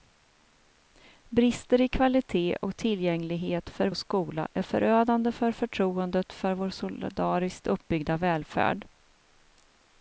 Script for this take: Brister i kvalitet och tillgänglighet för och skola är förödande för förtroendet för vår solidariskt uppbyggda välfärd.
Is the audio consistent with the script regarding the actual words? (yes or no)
yes